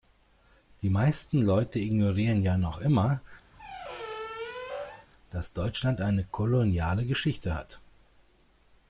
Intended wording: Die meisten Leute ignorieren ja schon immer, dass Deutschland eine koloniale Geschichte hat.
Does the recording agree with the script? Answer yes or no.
no